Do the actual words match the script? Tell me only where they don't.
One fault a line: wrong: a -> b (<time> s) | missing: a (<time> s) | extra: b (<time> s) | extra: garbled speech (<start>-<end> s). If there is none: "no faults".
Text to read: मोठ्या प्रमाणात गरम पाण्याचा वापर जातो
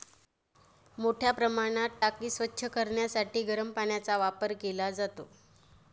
extra: टाकी स्वच्छ करण्यासाठी (2.0 s)
extra: केला (4.6 s)